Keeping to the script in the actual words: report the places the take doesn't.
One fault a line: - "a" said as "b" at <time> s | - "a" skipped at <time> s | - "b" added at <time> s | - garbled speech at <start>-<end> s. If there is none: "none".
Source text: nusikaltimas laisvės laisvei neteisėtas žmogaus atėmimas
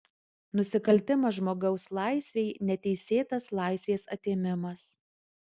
- "laisvės" said as "žmogaus" at 1.4 s
- "žmogaus" said as "laisvės" at 3.6 s